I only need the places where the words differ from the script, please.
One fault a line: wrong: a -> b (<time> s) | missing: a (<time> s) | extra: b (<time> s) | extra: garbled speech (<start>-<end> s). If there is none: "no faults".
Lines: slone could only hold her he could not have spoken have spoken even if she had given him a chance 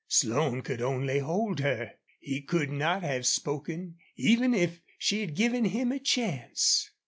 missing: have spoken (4.0 s)